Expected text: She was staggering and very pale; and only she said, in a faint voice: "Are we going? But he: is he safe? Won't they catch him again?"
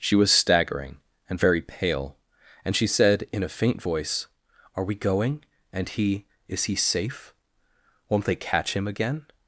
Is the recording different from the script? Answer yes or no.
yes